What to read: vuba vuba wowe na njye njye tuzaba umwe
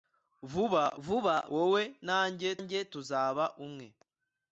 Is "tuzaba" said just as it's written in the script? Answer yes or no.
yes